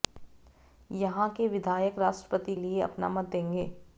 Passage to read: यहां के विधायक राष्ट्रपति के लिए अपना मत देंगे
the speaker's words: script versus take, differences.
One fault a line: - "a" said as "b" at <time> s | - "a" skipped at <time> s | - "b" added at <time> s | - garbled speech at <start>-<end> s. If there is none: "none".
- "के" skipped at 2.5 s